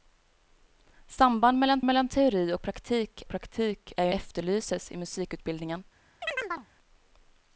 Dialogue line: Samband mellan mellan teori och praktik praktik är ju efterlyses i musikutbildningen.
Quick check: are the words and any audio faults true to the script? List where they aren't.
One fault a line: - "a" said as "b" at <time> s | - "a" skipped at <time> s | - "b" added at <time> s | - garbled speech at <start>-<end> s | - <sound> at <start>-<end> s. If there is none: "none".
- chirp at 6.2-6.7 s